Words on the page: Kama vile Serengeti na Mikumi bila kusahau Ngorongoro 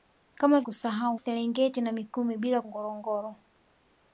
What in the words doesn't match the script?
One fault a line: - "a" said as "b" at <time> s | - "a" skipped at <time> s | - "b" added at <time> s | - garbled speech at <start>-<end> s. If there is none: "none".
- "vile" said as "kusahau" at 0.6 s
- "kusahau" skipped at 2.6 s